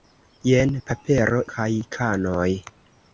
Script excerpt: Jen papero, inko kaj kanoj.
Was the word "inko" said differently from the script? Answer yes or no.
yes